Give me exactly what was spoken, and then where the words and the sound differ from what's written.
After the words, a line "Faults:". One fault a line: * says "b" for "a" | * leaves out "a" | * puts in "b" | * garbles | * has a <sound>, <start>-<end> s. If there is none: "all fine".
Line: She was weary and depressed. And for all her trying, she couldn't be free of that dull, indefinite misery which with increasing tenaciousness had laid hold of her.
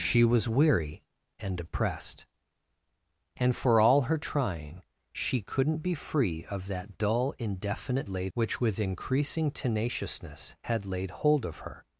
She was weary and depressed. And for all her trying, she couldn't be free of that dull, indefinite laid which with increasing tenaciousness had laid hold of her.
Faults:
* says "laid" for "misery"